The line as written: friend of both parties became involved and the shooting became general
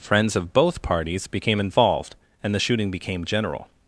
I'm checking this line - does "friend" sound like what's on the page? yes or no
no